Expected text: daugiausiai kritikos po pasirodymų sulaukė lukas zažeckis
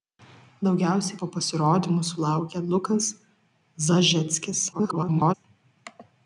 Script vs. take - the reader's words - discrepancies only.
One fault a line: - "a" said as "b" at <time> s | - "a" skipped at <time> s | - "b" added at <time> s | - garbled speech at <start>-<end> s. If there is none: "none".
- "kritikos" skipped at 1.2 s
- garbled speech at 4.7-5.3 s